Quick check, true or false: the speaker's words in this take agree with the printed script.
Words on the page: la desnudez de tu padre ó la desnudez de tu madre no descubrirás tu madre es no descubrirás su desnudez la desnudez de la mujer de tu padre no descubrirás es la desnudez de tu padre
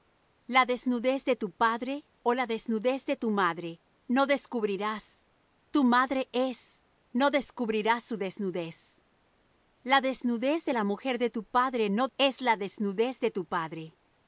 false